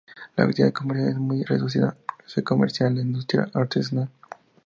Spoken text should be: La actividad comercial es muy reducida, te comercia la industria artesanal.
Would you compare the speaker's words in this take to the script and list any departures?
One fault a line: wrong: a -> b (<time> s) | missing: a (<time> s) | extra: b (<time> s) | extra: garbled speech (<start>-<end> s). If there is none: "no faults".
wrong: te -> se (2.2 s)